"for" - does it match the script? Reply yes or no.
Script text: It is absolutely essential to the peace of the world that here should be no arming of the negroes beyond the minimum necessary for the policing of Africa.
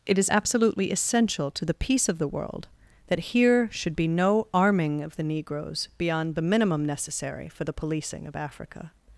yes